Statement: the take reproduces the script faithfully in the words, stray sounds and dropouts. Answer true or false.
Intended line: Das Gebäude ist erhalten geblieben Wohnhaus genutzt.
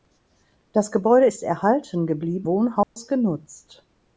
false